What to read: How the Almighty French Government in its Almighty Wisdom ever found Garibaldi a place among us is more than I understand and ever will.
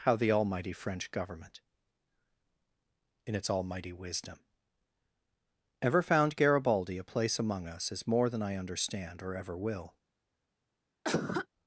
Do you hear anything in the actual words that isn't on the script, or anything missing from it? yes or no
yes